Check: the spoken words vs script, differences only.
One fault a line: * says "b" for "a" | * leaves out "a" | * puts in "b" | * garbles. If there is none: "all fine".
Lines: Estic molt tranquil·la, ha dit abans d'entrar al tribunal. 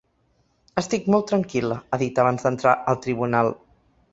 all fine